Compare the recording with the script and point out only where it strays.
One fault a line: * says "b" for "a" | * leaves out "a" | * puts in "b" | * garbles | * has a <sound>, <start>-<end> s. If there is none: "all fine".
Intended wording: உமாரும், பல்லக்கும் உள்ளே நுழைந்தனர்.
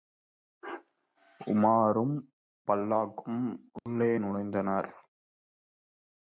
* has a dropout, 3.8-3.9 s